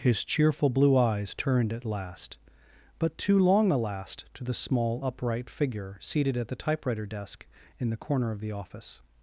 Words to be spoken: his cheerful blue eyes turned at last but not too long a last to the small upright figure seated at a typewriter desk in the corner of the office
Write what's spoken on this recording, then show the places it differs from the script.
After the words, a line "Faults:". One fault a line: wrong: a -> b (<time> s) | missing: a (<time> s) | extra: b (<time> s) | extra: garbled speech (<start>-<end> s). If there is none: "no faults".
his cheerful blue eyes turned at last but too long a last to the small upright figure seated at the typewriter desk in the corner of the office
Faults:
missing: not (3.2 s)
wrong: a -> the (6.5 s)